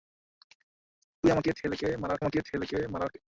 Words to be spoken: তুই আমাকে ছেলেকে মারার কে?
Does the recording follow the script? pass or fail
fail